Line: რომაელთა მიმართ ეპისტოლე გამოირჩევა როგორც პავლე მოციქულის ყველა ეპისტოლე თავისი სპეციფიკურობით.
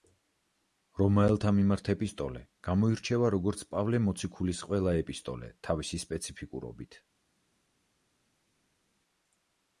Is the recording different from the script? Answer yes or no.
no